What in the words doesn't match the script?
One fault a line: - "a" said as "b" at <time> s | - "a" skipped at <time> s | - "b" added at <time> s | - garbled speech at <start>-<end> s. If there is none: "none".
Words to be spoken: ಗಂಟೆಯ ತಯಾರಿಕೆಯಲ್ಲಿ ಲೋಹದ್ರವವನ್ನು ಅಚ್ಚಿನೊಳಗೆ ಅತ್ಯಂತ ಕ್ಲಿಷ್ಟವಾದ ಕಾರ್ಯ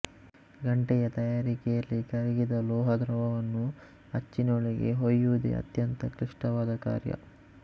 - "ಕರಗಿದ" added at 2.0 s
- "ಹೊಯುವುದೇ" added at 5.0 s